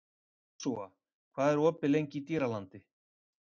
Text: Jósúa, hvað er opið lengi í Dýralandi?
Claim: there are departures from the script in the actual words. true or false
false